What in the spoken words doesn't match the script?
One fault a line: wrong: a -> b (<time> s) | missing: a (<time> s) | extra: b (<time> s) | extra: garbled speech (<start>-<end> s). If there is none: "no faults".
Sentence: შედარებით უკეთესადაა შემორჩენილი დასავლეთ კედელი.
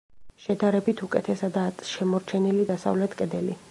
no faults